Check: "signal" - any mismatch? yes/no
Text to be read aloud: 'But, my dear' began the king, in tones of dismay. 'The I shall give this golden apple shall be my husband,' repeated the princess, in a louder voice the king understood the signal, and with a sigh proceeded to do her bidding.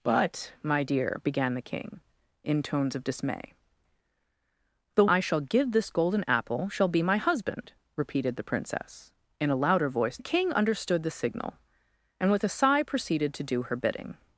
no